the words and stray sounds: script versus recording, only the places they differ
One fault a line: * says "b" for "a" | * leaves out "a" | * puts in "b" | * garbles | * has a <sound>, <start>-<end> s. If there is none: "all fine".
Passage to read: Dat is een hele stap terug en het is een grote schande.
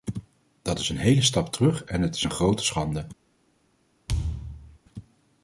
* has a thud, 4.1-4.8 s